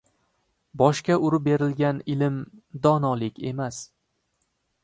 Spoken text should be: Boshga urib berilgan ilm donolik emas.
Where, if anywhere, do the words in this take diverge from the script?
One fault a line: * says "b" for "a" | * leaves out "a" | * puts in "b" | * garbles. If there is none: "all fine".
all fine